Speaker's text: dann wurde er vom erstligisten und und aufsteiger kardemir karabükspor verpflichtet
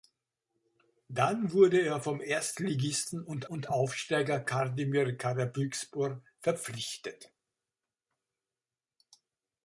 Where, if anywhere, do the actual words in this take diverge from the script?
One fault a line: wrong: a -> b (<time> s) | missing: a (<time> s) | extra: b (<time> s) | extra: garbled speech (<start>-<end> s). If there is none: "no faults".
no faults